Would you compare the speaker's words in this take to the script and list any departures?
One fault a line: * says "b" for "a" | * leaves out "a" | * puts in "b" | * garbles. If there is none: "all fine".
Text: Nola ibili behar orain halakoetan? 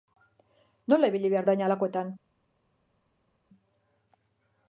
all fine